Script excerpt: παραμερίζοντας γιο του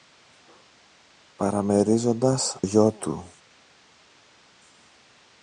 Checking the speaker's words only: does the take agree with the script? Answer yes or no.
yes